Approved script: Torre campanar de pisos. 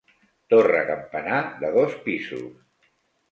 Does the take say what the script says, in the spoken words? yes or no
no